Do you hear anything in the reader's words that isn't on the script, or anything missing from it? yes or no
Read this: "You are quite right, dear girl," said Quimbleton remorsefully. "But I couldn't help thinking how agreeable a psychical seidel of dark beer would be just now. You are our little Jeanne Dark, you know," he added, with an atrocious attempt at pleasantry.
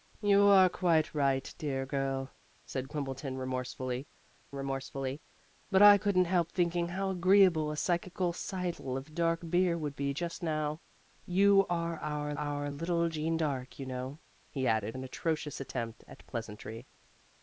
yes